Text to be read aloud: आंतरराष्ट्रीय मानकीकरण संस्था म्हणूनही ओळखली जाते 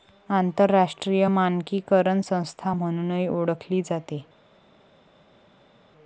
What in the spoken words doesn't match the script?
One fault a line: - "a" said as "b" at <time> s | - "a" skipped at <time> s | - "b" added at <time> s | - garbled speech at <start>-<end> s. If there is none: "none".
none